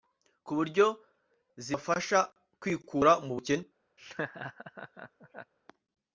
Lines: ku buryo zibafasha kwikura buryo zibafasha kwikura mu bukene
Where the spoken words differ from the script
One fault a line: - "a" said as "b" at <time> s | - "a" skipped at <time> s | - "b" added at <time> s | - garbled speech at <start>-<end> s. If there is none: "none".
- "buryo zibafasha kwikura" skipped at 3.1 s